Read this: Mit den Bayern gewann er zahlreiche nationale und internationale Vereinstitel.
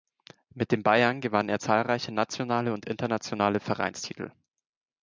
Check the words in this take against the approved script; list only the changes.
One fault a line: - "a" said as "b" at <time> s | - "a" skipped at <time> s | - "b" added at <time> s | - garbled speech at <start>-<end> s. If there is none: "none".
none